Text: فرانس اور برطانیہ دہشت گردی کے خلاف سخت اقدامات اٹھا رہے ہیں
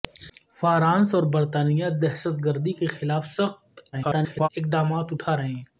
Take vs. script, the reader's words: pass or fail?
fail